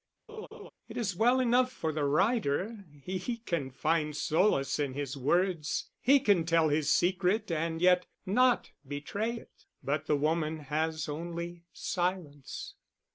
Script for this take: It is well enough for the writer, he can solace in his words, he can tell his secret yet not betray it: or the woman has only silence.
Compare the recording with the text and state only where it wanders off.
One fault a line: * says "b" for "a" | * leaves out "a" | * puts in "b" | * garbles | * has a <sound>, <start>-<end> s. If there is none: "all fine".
* has a laugh, 0.3-0.7 s
* puts in "find"
* puts in "and"
* says "but" for "or"